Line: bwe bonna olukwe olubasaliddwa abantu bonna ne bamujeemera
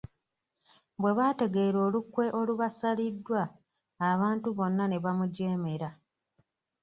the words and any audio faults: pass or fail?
fail